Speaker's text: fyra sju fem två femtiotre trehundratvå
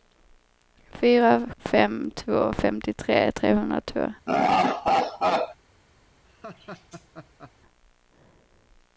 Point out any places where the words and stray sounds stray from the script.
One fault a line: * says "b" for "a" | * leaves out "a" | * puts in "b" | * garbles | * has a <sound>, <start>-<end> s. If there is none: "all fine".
* leaves out "sju"
* has a laugh, 4.3-5.6 s
* has a laugh, 6.2-7.5 s